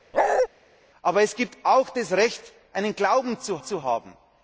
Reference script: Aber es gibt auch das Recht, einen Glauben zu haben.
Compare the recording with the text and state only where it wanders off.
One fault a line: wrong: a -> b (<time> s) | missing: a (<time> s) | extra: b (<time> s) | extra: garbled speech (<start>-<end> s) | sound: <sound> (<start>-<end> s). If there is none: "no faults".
sound: bark (0.1-0.5 s)
extra: zu (3.6 s)